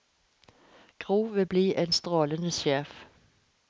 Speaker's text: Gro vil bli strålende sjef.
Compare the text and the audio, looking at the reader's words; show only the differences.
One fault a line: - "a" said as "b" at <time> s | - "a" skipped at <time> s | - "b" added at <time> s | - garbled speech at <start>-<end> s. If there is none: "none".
- "en" added at 1.8 s